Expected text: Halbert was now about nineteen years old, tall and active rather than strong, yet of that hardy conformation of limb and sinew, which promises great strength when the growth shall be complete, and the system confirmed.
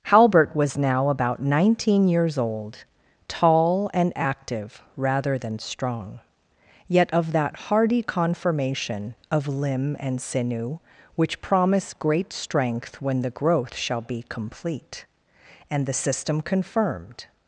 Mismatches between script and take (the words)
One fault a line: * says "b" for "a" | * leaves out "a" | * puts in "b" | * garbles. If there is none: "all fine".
* says "promise" for "promises"